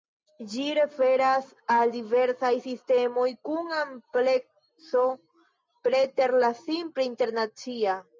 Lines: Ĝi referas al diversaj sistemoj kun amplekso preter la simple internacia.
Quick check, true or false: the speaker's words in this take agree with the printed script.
true